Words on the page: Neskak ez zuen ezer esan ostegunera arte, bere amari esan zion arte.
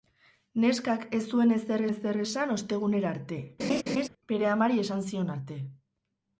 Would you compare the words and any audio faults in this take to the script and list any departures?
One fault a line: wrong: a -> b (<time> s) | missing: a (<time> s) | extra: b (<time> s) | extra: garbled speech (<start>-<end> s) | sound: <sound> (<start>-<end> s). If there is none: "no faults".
extra: ezer (1.9 s)
sound: laugh (3.6-4.1 s)